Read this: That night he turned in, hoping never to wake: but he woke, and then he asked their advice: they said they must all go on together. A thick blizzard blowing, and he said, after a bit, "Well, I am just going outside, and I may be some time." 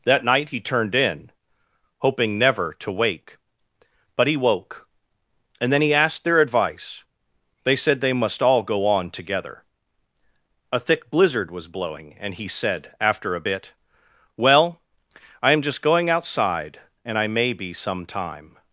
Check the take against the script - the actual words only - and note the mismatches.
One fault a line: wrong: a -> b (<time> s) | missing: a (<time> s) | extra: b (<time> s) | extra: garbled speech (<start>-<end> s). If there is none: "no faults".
extra: was (11.5 s)